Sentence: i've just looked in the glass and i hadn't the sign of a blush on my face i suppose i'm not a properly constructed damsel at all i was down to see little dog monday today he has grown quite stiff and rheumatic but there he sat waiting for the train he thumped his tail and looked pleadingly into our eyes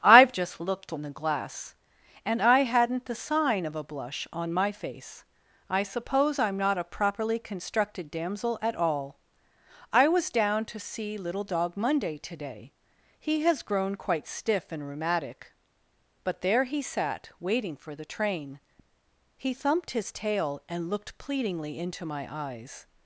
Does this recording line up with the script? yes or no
no